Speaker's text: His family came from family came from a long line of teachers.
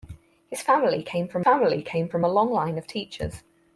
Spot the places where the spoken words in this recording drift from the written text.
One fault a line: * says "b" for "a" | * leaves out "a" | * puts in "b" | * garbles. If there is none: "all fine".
all fine